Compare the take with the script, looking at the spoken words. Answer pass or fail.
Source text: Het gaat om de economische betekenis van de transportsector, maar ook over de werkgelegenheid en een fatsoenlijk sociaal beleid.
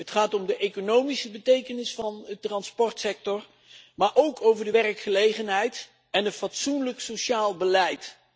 pass